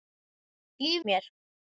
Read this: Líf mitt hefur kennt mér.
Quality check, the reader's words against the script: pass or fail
fail